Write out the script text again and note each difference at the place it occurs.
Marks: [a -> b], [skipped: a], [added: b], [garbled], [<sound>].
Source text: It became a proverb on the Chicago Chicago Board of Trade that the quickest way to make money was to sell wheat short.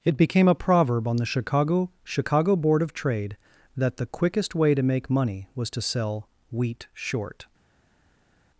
It became a proverb on the Chicago Chicago Board of Trade that the quickest way to make money was to sell wheat short.